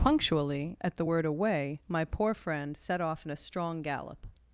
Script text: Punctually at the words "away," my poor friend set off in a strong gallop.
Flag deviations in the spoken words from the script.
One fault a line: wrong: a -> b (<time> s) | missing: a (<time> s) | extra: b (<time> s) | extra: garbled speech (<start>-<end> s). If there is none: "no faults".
wrong: words -> word (1.0 s)